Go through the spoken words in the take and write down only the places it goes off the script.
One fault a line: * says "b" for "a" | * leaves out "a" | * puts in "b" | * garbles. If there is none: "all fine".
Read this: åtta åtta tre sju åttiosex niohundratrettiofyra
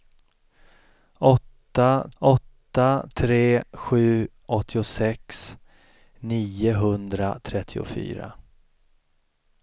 all fine